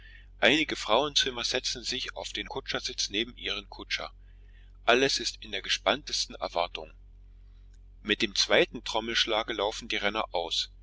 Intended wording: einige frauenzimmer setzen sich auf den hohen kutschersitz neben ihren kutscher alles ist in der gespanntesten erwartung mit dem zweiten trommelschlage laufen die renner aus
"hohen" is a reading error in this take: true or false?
true